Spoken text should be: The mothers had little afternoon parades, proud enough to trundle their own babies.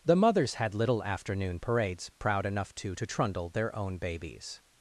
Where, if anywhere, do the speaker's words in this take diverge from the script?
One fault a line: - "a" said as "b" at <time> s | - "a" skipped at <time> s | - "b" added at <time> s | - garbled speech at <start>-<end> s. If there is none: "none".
- "to" added at 2.9 s